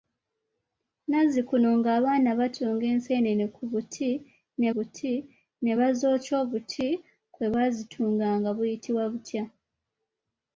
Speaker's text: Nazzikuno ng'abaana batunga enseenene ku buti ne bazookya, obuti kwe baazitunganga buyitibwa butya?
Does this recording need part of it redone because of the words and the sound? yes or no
yes